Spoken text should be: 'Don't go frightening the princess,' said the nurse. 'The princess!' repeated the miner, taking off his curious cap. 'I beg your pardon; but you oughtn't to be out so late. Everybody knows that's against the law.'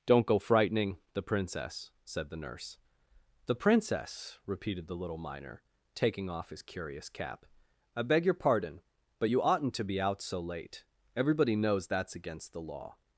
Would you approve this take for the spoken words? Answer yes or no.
no